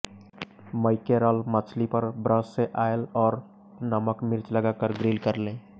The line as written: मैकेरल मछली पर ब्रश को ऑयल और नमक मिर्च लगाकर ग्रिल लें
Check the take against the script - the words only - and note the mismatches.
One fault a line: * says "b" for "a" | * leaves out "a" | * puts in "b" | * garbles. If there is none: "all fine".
* says "से" for "को"
* puts in "कर"